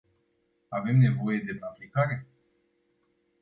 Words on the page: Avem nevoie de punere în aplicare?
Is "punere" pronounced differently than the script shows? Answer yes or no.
yes